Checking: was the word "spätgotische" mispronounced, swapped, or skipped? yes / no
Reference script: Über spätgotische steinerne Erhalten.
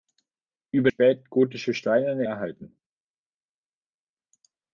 no